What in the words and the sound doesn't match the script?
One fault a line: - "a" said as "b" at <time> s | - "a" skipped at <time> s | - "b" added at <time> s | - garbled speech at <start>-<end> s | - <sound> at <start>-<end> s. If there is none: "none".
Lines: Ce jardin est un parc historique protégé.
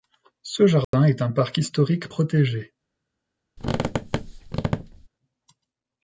- dropout at 0.8-0.9 s
- squeak at 3.6-5.1 s